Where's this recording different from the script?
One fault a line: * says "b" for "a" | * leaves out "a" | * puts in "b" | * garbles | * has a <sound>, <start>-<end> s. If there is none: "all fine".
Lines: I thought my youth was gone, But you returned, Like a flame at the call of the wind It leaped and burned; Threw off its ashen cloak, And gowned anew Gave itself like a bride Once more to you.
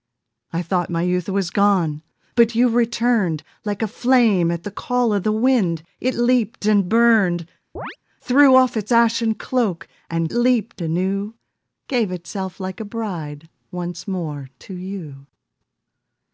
* has a chirp, 7.8-8.0 s
* says "leaped" for "gowned"